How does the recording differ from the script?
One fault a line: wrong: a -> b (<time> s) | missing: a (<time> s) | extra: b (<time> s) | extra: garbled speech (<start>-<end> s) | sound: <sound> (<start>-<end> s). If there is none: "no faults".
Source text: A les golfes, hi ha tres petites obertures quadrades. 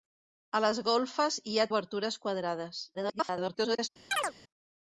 missing: tres petites (1.7 s)
extra: garbled speech (2.9-3.9 s)
sound: chirp (4.1-4.3 s)